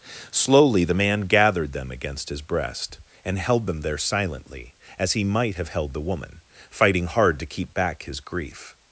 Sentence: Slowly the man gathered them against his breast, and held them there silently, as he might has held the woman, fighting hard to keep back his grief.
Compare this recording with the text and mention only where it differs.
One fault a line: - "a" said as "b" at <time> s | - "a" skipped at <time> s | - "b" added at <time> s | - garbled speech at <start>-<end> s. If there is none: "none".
- "has" said as "have" at 5.6 s